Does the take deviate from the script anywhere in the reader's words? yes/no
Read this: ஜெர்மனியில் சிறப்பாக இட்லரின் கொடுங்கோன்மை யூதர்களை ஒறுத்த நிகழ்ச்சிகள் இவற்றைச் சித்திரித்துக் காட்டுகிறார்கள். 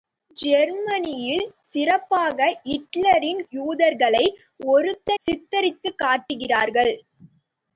yes